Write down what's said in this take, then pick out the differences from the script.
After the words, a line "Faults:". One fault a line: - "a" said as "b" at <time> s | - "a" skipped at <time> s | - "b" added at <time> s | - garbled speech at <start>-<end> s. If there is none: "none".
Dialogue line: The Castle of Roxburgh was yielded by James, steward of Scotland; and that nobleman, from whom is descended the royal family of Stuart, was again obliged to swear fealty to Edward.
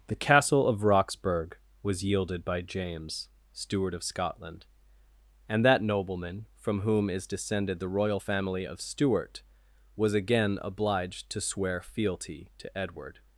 The Castle of Roxburgh was yielded by James, steward of Scotland; and that nobleman, from whom is descended the royal family of Stuart, was again obliged to swear fealty to Edward.
Faults:
none